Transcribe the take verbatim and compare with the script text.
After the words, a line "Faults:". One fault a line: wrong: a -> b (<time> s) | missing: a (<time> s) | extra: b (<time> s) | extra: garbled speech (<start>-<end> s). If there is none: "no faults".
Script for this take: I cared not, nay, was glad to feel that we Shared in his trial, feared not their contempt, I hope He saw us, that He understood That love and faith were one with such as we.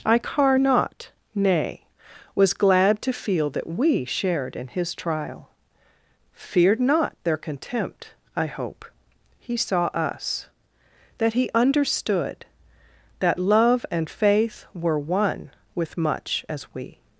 I car not, nay, was glad to feel that we Shared in his trial, feared not their contempt, I hope He saw us, that He understood That love and faith were one with much as we.
Faults:
wrong: cared -> car (0.2 s)
wrong: such -> much (16.0 s)